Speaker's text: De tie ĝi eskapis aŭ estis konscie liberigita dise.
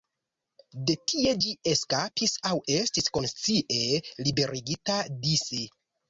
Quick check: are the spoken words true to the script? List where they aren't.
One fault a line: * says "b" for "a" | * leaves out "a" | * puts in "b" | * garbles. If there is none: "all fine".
all fine